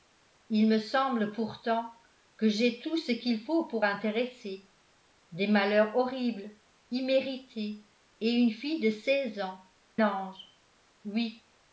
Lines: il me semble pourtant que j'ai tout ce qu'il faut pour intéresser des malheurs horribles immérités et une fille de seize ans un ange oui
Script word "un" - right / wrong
wrong